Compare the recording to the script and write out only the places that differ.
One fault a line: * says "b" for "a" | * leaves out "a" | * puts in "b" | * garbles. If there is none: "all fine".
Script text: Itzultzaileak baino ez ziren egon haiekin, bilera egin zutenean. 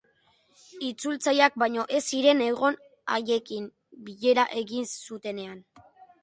all fine